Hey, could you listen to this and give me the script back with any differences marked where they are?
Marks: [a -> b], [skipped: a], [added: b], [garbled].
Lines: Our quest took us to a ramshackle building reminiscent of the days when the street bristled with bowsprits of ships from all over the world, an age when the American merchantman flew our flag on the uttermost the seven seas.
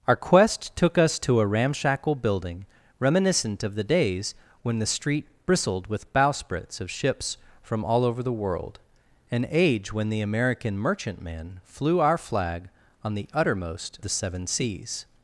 Our quest took us to a ramshackle building reminiscent of the days when the street bristled with bowsprits of ships from all over the world, an age when the American merchantman flew our flag on the uttermost the seven seas.